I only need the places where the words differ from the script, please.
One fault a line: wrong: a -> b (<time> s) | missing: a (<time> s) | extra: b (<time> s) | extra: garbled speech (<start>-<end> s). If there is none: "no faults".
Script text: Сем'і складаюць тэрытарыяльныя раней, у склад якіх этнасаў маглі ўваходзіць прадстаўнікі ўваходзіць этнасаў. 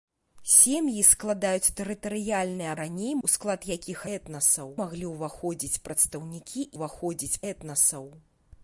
no faults